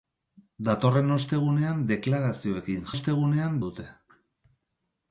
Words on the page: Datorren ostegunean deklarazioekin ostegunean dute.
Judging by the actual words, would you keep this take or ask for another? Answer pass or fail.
pass